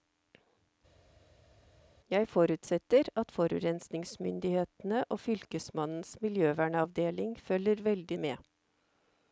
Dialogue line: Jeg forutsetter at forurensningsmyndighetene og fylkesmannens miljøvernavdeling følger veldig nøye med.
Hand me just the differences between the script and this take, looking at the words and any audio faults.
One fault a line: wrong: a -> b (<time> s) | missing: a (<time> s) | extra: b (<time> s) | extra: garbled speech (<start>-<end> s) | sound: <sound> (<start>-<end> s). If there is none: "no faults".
missing: nøye (8.2 s)